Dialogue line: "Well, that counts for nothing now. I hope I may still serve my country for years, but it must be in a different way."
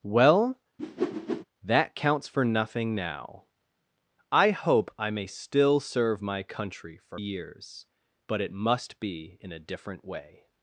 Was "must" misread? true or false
false